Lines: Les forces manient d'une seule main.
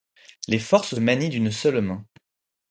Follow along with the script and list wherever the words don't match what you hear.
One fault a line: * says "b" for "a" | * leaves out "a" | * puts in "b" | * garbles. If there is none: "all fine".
all fine